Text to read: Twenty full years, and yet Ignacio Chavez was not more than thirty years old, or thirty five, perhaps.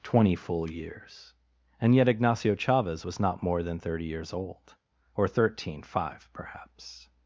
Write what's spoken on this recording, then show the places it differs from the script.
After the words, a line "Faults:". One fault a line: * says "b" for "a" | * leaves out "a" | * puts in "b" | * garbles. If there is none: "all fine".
Twenty full years, and yet Ignacio Chavez was not more than thirty years old, or thirteen five, perhaps.
Faults:
* says "thirteen" for "thirty"